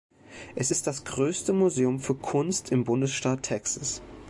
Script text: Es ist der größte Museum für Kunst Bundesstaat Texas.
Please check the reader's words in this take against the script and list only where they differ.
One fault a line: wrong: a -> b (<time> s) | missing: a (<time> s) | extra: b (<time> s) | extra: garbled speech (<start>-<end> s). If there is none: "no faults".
wrong: der -> das (0.9 s)
extra: im (2.7 s)